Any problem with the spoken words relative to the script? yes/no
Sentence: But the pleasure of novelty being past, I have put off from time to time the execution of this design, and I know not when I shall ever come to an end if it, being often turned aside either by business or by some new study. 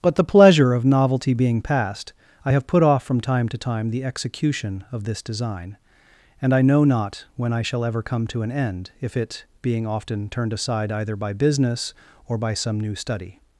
no